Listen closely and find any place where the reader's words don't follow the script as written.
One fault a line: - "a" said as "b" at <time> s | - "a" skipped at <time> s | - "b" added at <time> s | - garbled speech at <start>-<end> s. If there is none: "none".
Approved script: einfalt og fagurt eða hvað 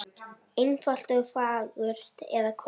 none